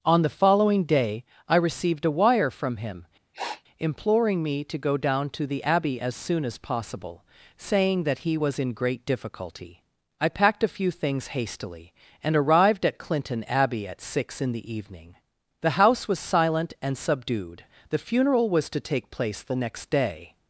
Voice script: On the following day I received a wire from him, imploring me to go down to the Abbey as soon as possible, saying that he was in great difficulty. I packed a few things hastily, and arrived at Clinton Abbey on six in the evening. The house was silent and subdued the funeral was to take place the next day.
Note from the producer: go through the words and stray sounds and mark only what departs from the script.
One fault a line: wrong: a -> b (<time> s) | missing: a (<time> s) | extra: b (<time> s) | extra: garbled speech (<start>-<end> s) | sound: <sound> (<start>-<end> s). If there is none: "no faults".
sound: sniff (3.3-3.6 s)
wrong: on -> at (13.9 s)